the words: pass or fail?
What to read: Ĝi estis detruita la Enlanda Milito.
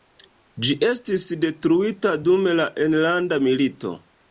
fail